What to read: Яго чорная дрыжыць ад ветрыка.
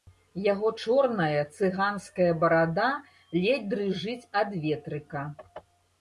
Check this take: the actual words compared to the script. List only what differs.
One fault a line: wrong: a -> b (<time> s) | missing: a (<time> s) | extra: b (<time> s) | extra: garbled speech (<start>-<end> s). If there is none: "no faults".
extra: цыганская барада ледзь (1.6 s)